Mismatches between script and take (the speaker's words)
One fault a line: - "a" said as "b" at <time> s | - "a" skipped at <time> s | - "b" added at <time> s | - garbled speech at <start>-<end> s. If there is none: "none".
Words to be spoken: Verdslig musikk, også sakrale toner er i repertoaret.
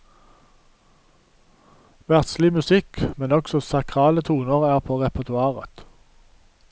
- "men" added at 3.2 s
- "i" said as "på" at 4.8 s